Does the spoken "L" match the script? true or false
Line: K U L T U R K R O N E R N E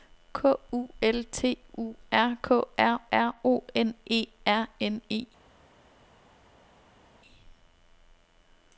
true